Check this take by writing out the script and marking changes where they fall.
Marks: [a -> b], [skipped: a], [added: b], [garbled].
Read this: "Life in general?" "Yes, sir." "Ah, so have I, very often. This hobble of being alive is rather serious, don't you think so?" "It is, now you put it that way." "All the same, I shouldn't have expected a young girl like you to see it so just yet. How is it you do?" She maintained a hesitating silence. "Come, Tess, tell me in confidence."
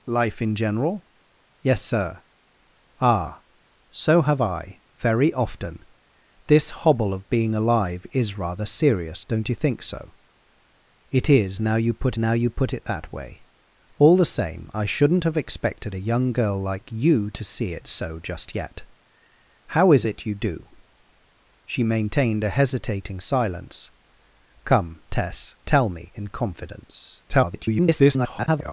"Life in general?" "Yes, sir." "Ah, so have I, very often. This hobble of being alive is rather serious, don't you think so?" "It is, now you put [added: now you put] it that way." "All the same, I shouldn't have expected a young girl like you to see it so just yet. How is it you do?" She maintained a hesitating silence. "Come, Tess, tell me in confidence." [garbled]